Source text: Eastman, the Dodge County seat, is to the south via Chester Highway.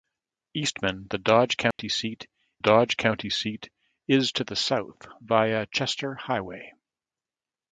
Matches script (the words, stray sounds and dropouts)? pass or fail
fail